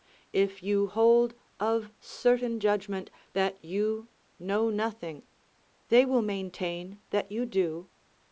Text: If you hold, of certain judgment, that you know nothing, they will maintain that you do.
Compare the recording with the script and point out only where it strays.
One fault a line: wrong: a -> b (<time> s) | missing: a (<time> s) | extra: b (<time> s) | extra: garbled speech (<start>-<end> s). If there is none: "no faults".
no faults